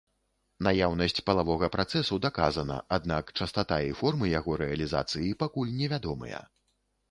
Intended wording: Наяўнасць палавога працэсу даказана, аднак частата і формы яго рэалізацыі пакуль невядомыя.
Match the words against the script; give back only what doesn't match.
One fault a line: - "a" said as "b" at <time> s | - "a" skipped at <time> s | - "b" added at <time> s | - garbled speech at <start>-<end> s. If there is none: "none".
none